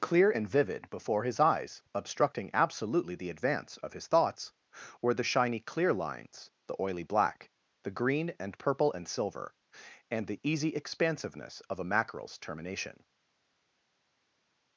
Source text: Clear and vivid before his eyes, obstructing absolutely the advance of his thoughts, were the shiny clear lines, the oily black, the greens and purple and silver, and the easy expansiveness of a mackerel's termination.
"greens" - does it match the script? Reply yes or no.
no